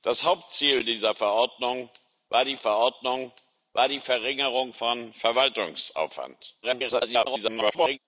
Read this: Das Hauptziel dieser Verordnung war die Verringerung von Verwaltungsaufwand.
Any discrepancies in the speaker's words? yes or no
yes